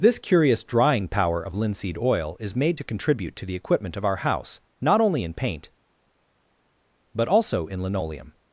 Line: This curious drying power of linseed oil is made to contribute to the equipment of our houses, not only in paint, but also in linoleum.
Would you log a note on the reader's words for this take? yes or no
yes